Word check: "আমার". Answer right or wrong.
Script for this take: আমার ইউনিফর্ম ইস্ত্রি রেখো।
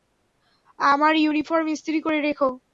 right